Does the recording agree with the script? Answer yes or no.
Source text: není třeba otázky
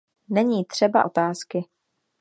yes